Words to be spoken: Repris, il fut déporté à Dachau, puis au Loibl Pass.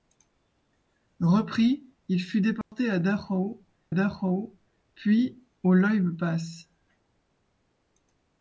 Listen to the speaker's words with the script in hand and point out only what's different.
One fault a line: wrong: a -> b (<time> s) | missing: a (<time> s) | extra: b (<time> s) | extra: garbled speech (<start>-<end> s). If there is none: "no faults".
extra: Dachau (3.9 s)